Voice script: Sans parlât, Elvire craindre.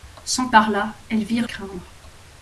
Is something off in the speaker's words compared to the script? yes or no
no